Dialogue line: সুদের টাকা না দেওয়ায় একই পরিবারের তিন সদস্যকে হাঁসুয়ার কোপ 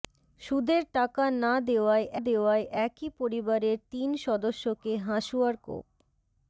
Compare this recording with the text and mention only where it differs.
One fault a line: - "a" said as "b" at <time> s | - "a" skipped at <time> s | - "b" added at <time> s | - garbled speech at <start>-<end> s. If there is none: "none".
- "দেওয়ায়" added at 2.2 s